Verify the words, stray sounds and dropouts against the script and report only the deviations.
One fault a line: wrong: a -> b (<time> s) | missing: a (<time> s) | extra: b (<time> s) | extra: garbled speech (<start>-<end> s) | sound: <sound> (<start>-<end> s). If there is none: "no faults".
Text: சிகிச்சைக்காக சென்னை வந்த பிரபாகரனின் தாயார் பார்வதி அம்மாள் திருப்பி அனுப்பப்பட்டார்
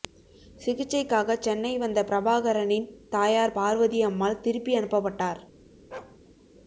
sound: bark (5.9-6.2 s)